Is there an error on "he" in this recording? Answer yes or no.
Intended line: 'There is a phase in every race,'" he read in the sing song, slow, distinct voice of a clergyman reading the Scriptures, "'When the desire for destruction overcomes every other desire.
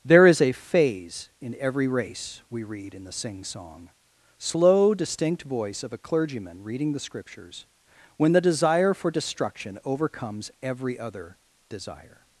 yes